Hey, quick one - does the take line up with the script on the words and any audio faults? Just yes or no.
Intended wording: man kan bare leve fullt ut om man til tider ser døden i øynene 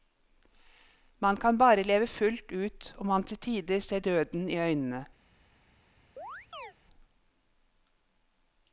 no